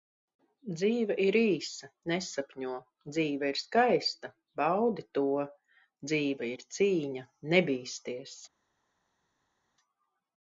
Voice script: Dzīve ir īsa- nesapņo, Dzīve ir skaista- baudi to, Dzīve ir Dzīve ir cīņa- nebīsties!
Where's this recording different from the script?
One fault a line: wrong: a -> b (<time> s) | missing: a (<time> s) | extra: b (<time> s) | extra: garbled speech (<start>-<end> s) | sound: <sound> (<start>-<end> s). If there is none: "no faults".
missing: Dzīve ir (6.7 s)